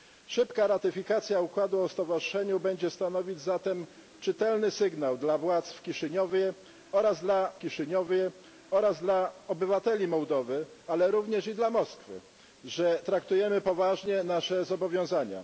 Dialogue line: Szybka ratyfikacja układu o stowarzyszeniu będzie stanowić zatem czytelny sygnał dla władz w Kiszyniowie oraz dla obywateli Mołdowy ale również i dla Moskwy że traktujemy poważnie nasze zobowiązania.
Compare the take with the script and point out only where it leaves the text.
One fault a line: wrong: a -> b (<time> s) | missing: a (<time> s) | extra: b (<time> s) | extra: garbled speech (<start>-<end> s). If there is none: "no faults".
extra: Kiszyniowie oraz dla (7.6 s)